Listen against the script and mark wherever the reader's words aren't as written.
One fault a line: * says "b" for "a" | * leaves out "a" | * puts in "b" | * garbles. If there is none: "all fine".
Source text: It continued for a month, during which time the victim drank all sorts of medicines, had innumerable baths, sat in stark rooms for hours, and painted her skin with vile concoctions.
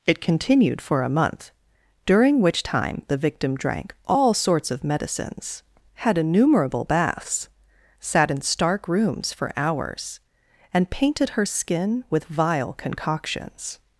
all fine